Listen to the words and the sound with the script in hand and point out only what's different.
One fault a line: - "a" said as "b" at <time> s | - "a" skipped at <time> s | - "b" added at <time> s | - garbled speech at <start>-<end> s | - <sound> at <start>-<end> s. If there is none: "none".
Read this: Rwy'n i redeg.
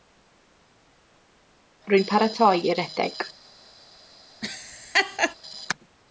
- "paratoi" added at 2.1 s
- laugh at 4.4-5.4 s